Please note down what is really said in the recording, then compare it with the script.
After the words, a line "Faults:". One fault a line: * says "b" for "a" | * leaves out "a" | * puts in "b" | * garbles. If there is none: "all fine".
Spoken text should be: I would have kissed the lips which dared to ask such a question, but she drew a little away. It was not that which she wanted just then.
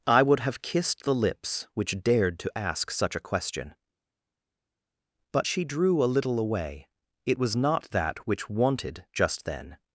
I would have kissed the lips which dared to ask such a question, but she drew a little away. It was not that which wanted just then.
Faults:
* leaves out "she"